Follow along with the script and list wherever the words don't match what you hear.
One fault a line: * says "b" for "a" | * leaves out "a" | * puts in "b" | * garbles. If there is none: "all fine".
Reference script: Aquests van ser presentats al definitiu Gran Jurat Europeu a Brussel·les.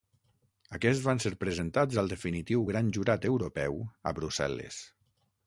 all fine